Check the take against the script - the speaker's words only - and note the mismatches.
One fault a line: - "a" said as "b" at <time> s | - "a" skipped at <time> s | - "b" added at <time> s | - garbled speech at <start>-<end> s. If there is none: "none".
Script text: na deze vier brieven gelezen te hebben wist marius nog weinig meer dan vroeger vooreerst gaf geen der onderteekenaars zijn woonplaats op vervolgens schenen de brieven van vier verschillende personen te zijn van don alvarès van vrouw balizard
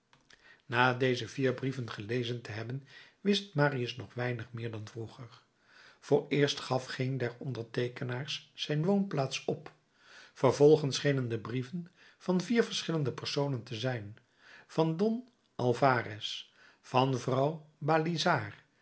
none